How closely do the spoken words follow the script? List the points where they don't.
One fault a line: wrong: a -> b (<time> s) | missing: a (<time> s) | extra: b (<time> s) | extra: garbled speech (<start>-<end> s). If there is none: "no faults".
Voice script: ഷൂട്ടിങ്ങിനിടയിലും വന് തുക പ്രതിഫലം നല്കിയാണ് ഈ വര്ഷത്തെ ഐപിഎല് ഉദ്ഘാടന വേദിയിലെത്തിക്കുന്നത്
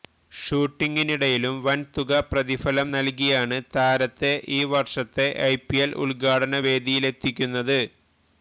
extra: താരത്തെ (3.7 s)